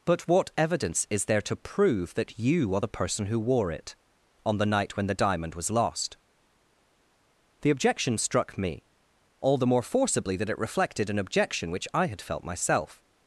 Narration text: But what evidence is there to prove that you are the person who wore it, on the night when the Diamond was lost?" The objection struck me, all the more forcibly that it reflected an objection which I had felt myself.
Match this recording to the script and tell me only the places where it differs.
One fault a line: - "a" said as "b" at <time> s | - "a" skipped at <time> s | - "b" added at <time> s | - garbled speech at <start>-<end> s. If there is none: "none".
none